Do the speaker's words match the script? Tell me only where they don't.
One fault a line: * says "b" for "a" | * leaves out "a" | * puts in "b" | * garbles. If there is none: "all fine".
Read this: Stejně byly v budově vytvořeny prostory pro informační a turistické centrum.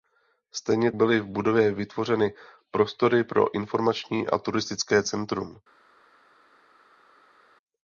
all fine